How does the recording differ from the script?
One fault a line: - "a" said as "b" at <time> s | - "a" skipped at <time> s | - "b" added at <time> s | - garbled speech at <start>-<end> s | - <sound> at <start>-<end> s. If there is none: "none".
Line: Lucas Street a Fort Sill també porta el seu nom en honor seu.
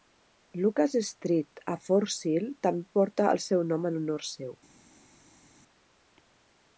none